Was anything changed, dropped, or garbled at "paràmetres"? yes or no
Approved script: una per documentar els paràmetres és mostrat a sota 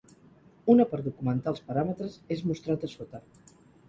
no